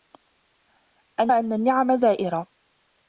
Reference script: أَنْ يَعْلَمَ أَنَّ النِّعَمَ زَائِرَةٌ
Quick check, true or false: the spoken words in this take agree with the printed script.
false